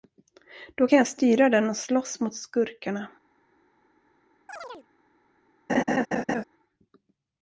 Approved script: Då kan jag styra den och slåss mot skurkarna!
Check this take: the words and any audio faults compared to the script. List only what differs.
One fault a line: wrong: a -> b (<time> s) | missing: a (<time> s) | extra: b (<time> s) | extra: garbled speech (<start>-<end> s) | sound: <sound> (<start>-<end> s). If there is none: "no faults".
sound: chirp (4.5-4.9 s)
sound: laugh (5.7-6.4 s)